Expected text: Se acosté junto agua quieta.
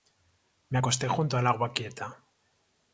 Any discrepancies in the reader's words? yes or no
yes